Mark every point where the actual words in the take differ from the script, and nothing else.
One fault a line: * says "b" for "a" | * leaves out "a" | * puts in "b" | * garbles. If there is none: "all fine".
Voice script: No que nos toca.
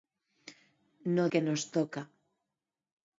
all fine